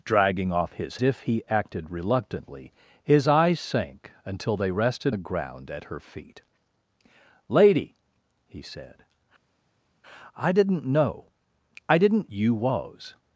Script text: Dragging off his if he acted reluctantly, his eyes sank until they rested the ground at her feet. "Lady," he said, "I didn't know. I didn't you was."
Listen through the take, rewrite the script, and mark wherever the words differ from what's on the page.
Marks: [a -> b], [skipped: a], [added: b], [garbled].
Dragging off his if he acted reluctantly, his eyes sank until they rested the ground at her feet. "Lady," he said, "I didn't know. I didn't you was."